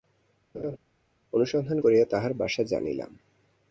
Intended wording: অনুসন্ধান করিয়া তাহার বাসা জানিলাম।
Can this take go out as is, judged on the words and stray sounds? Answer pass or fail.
fail